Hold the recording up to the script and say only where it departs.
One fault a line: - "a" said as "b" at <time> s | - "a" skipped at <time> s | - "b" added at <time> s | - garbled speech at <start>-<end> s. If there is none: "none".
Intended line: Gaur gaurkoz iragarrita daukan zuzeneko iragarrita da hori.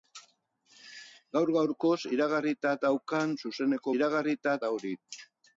none